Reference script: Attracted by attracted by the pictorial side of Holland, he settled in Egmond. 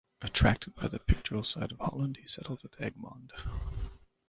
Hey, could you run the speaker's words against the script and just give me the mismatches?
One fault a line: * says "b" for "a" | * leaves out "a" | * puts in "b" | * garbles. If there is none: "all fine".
* leaves out "attracted by"
* says "at" for "in"